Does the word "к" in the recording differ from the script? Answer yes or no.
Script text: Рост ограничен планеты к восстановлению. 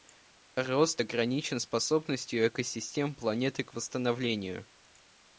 no